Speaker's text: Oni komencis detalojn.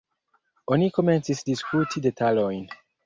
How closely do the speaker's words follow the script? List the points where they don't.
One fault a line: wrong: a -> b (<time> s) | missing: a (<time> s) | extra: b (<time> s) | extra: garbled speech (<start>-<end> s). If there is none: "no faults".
extra: diskuti (1.5 s)